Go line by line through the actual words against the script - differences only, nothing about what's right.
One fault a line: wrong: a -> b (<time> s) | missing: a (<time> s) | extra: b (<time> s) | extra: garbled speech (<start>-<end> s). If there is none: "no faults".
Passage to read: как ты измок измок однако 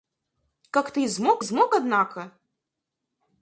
no faults